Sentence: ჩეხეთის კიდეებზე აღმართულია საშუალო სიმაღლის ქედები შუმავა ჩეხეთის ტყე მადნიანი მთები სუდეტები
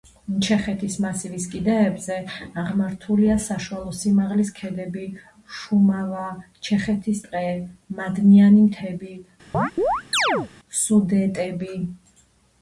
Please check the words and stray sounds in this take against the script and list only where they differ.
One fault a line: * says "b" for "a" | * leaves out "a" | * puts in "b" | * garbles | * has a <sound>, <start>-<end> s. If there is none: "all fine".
* puts in "მასივის"
* has a chirp, 9.5-10.5 s